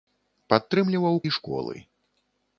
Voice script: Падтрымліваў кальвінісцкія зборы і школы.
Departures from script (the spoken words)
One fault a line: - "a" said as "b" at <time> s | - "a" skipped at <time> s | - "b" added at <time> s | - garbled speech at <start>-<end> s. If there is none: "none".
- "кальвінісцкія зборы" skipped at 1.2 s